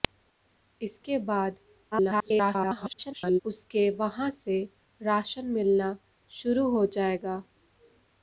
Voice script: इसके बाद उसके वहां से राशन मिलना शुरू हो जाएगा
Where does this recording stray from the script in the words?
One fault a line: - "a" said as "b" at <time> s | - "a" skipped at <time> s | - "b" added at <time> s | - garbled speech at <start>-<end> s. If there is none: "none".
- garbled speech at 1.9-3.4 s